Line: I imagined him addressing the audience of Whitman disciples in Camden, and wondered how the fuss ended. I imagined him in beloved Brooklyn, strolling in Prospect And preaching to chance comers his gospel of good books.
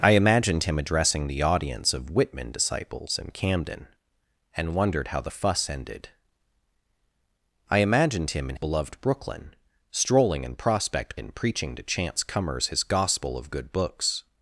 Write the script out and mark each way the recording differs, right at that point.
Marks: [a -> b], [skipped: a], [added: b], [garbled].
I imagined him addressing the audience of Whitman disciples in Camden, and wondered how the fuss ended. I imagined him in beloved Brooklyn, strolling in Prospect And preaching to chance comers his gospel of good books.